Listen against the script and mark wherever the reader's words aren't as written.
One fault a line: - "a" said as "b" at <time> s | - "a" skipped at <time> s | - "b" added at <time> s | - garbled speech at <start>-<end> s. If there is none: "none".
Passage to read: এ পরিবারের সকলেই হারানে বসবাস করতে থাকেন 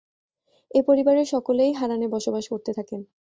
none